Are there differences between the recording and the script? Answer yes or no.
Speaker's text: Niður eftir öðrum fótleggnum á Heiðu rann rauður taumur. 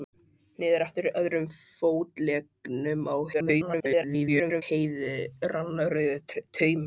yes